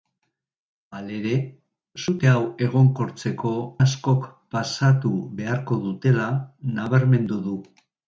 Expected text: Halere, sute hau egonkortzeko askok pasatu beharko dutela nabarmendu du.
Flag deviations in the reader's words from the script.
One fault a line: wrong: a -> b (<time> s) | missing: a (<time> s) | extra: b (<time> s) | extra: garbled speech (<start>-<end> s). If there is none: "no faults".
no faults